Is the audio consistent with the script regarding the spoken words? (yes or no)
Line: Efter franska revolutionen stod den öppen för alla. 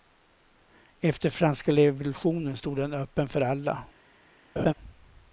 yes